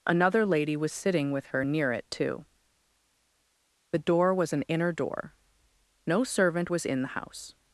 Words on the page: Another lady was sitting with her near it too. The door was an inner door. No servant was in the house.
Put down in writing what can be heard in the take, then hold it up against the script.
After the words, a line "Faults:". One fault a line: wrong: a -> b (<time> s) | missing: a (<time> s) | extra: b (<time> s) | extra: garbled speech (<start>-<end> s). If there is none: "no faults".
Another lady was sitting with her near it too. The door was an inner door. No servant was in the house.
Faults:
no faults